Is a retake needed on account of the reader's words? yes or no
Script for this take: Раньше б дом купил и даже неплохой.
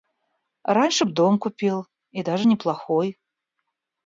no